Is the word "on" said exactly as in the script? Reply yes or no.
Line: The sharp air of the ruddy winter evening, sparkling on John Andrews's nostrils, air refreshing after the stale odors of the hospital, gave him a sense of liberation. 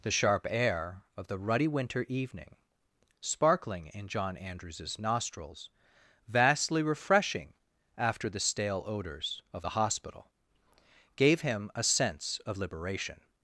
no